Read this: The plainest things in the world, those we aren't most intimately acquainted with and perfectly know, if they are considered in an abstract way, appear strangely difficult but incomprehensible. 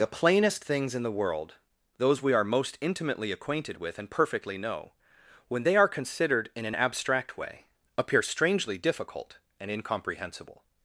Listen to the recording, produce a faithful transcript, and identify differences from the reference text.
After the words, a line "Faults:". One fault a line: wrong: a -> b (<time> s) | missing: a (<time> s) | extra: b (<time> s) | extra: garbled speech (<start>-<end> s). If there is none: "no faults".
The plainest things in the world, those we are most intimately acquainted with and perfectly know, when they are considered in an abstract way, appear strangely difficult and incomprehensible.
Faults:
wrong: aren't -> are (2.3 s)
wrong: if -> when (5.5 s)
wrong: but -> and (9.6 s)